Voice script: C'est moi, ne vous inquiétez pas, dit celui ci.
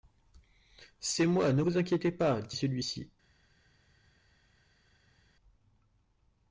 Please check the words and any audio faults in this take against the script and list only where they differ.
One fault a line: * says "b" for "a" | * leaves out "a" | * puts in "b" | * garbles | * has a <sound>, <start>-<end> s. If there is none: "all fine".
all fine